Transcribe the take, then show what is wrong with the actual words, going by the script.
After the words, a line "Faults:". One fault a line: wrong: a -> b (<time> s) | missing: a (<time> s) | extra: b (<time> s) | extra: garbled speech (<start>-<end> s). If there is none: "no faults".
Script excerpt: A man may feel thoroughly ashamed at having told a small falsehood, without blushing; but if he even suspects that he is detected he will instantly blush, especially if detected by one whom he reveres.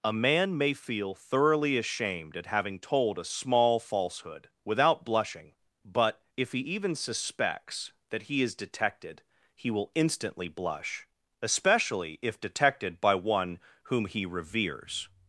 A man may feel thoroughly ashamed at having told a small falsehood, without blushing; but if he even suspects that he is detected he will instantly blush, especially if detected by one whom he reveres.
Faults:
no faults